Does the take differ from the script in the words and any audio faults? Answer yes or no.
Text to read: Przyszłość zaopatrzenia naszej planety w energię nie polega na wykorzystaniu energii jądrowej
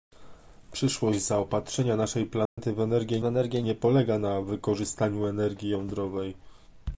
yes